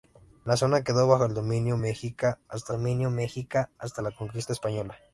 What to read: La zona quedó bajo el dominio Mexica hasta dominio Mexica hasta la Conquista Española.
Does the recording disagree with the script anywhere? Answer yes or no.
no